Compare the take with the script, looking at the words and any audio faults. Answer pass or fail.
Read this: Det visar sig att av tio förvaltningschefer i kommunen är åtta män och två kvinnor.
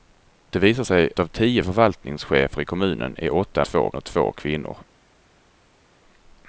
fail